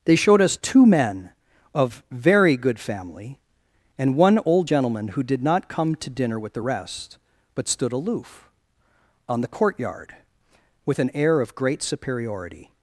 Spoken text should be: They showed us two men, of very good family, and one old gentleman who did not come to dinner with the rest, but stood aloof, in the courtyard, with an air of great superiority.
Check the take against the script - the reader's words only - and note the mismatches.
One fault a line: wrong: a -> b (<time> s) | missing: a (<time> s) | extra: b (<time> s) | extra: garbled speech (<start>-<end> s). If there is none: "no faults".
wrong: in -> on (9.3 s)